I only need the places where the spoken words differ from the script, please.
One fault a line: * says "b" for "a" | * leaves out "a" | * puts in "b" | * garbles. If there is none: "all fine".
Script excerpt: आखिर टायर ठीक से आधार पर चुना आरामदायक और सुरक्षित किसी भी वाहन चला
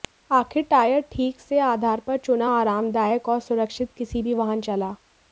all fine